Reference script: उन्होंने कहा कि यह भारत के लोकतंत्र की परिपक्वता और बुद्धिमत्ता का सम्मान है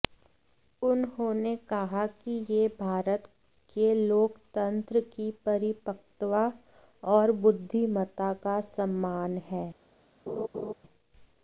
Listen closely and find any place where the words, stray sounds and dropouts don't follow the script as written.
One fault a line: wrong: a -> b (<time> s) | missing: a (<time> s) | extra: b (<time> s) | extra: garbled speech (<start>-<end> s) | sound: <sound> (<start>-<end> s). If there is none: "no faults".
sound: laugh (10.3-10.7 s)